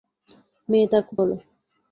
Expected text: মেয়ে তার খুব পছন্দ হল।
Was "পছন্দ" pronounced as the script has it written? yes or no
no